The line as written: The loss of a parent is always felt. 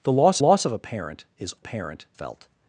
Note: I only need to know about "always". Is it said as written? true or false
false